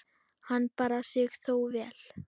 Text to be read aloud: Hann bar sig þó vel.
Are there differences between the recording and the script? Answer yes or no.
no